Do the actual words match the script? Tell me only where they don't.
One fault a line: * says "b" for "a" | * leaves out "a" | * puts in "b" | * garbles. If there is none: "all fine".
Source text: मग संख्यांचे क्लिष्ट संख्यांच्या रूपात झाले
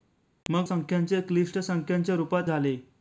all fine